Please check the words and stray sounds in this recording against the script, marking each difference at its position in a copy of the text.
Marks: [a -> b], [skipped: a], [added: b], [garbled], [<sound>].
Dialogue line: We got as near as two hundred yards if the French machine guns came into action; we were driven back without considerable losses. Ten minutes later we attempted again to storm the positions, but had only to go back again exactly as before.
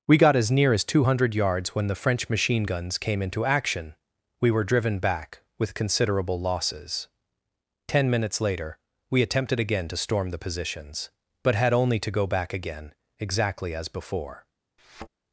We got as near as two hundred yards [if -> when] the French machine guns came into action; we were driven back [without -> with] considerable losses. Ten minutes later we attempted again to storm the positions, but had only to go back again exactly as before. [thud]